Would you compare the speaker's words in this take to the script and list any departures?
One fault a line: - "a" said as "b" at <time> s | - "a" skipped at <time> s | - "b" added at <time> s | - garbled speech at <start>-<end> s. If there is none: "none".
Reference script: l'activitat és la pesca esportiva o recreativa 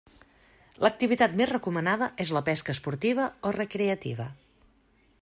- "més recomanada" added at 1.4 s